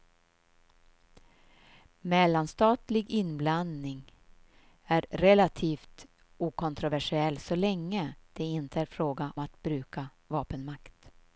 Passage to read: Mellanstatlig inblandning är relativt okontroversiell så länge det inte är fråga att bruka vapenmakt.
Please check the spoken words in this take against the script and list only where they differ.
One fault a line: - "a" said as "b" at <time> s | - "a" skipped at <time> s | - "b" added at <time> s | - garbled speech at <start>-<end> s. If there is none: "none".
none